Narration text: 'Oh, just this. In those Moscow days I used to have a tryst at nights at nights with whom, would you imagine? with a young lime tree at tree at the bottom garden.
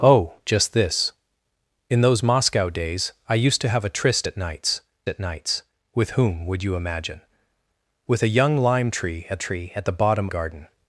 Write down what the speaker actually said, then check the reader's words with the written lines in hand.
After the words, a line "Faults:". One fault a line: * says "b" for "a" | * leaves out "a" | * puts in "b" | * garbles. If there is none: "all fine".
'Oh, just this. In those Moscow days I used to have a tryst at nights at nights with whom, would you imagine? with a young lime tree at tree at the bottom garden.
Faults:
all fine